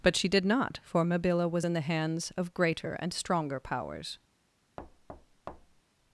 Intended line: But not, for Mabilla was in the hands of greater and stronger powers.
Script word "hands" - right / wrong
right